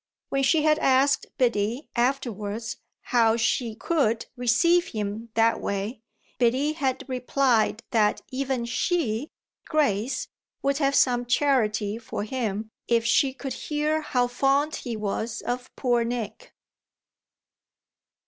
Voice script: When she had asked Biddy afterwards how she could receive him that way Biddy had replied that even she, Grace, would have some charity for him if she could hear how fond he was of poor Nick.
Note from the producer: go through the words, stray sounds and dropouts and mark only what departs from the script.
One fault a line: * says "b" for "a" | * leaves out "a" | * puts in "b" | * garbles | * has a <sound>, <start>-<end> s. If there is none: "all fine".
all fine